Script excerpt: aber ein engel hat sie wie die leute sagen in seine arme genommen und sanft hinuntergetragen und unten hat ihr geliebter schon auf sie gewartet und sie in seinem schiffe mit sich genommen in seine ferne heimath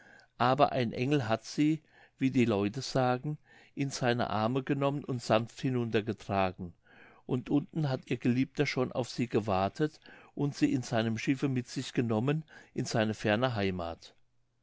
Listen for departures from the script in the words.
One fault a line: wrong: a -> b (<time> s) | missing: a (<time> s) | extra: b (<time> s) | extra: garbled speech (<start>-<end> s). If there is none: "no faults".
no faults